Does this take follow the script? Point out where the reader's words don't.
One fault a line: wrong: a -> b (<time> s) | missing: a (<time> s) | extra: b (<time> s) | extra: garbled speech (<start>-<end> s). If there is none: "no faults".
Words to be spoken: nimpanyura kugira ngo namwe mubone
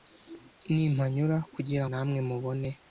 missing: ngo (1.9 s)